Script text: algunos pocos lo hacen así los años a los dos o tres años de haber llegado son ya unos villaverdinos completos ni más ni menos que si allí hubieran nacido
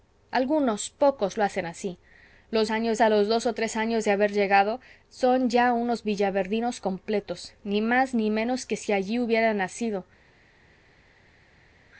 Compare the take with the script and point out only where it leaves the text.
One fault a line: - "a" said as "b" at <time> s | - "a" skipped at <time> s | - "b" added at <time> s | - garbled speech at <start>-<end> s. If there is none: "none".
none